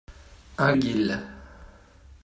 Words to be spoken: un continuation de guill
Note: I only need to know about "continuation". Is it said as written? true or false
false